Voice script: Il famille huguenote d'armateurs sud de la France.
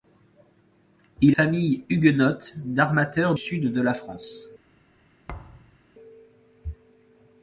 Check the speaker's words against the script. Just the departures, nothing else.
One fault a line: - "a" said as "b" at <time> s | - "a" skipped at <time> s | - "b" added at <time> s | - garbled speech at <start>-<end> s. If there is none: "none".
none